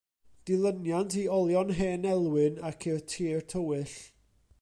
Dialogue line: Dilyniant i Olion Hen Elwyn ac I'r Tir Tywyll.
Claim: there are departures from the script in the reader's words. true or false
false